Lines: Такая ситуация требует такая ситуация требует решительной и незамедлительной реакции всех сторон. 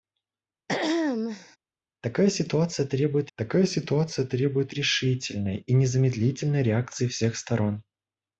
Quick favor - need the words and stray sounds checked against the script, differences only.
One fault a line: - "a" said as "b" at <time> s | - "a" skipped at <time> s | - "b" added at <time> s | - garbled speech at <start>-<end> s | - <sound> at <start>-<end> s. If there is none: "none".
- throat clearing at 0.7-1.6 s